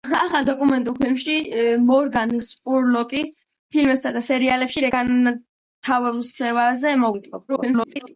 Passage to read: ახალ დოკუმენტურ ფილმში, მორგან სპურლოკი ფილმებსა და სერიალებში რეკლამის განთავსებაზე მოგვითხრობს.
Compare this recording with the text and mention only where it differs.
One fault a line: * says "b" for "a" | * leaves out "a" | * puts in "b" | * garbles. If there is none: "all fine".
* leaves out "რეკლამის"
* garbles